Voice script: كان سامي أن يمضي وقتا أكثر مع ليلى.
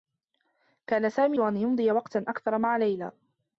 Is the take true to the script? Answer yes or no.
yes